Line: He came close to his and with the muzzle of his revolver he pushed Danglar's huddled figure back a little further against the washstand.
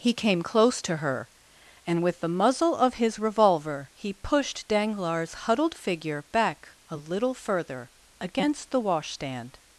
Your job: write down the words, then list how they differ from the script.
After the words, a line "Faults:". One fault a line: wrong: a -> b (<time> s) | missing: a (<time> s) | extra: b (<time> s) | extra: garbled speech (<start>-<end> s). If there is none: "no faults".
He came close to her and with the muzzle of his revolver he pushed Danglar's huddled figure back a little further against the washstand.
Faults:
wrong: his -> her (1.0 s)